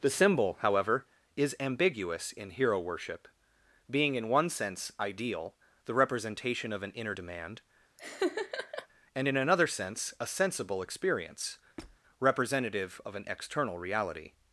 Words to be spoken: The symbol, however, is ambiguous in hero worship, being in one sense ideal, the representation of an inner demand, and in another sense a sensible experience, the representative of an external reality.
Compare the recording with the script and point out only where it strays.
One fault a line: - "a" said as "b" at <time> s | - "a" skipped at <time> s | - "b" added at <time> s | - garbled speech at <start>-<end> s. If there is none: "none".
- "the" skipped at 11.6 s